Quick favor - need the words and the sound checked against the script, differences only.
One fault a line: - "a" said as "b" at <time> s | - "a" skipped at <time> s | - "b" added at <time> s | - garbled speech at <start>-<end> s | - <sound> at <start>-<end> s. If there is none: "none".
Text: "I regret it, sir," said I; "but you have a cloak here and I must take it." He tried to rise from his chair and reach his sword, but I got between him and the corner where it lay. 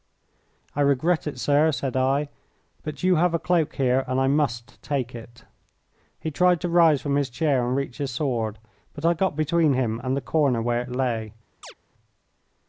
- chirp at 11.6-11.7 s